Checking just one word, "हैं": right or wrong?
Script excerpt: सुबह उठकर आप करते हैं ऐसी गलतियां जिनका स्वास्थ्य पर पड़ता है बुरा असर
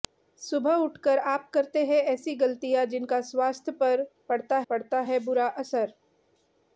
right